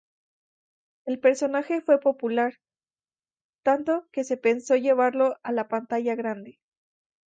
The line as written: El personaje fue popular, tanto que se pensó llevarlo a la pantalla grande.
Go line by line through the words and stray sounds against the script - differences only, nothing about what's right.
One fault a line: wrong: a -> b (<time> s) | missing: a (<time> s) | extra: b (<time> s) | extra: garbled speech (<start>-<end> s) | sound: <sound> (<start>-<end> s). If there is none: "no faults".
no faults